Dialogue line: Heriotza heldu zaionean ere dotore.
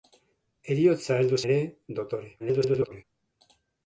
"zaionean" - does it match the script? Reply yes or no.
no